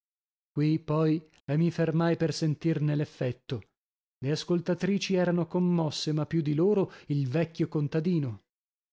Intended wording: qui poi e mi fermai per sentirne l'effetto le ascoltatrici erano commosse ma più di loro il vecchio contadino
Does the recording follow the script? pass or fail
pass